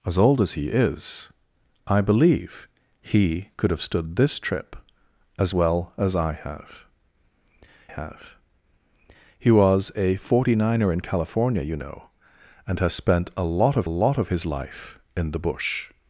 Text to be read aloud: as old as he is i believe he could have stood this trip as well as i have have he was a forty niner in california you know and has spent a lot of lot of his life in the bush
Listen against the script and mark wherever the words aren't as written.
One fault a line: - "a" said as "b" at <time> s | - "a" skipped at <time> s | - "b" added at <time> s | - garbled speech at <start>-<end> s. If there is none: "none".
none